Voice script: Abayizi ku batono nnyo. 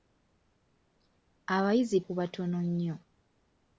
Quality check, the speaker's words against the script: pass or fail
pass